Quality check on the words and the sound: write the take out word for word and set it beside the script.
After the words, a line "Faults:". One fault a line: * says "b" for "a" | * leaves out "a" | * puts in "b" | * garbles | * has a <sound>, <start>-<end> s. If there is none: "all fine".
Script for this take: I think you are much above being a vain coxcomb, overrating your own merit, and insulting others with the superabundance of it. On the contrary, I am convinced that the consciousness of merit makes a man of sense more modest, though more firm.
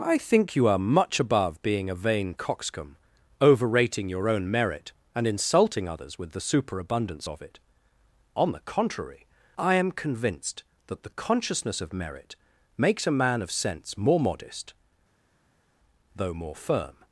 I think you are much above being a vain coxcomb, overrating your own merit, and insulting others with the superabundance of it. On the contrary, I am convinced that the consciousness of merit makes a man of sense more modest, though more firm.
Faults:
all fine